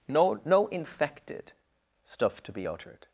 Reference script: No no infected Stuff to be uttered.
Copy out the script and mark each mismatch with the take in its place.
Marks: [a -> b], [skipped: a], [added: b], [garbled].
No no infected Stuff to be uttered.